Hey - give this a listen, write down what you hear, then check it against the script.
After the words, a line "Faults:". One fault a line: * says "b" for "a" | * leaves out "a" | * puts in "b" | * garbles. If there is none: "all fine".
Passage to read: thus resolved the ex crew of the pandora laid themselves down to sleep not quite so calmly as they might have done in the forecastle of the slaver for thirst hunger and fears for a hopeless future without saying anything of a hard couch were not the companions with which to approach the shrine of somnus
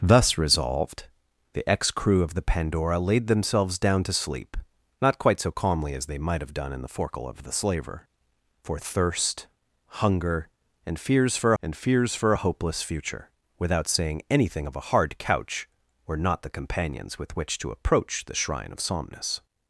thus resolved the ex crew of the pandora laid themselves down to sleep not quite so calmly as they might have done in the forecastle of the slaver for thirst hunger and fears for and fears for a hopeless future without saying anything of a hard couch were not the companions with which to approach the shrine of somnus
Faults:
* puts in "and fears for"